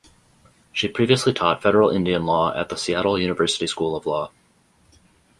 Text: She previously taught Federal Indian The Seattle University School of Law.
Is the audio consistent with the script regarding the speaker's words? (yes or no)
no